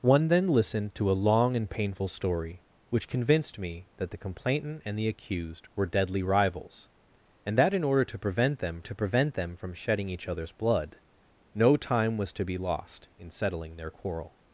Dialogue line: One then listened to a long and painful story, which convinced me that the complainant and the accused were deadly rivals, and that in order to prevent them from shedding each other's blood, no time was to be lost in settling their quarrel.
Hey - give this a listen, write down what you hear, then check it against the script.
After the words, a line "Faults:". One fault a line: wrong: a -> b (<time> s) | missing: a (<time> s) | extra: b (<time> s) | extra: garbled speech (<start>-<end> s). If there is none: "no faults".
One then listened to a long and painful story, which convinced me that the complainant and the accused were deadly rivals, and that in order to prevent them to prevent them from shedding each other's blood, no time was to be lost in settling their quarrel.
Faults:
extra: to prevent them (8.8 s)